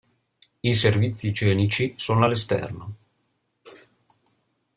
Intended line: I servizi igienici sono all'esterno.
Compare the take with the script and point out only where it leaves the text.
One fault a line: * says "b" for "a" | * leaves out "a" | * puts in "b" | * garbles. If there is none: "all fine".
all fine